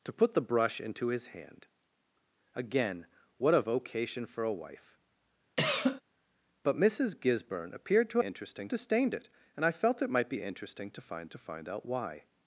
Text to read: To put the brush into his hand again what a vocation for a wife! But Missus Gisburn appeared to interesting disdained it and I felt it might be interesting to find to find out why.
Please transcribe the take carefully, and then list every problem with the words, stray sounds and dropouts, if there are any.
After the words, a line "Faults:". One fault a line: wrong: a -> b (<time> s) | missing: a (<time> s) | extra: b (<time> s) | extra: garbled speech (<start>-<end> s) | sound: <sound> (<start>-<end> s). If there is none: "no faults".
To put the brush into his hand again what a vocation for a wife! But Missus Gisburn appeared to interesting disdained it and I felt it might be interesting to find to find out why.
Faults:
sound: cough (5.6-6.0 s)